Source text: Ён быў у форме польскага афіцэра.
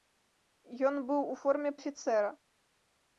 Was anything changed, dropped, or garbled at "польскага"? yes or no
yes